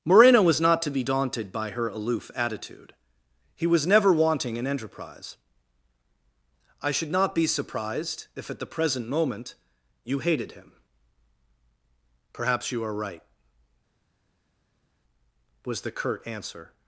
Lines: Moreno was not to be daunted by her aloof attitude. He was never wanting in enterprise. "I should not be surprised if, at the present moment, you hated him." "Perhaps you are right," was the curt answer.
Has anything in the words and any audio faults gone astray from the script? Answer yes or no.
no